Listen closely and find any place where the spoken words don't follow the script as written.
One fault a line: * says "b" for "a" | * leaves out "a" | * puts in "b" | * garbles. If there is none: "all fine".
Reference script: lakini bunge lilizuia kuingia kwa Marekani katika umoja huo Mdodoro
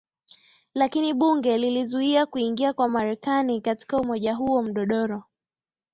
all fine